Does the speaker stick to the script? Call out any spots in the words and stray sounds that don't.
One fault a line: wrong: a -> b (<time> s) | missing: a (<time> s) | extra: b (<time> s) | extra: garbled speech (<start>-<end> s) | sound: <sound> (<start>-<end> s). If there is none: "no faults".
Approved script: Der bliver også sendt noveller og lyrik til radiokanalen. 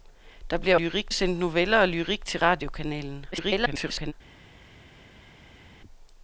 wrong: også -> lyrik (0.7 s)
extra: garbled speech (3.3-4.1 s)